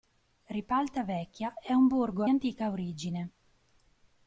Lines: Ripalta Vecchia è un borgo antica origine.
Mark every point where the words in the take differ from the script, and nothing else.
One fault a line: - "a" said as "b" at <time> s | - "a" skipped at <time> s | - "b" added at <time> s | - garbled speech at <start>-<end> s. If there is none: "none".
none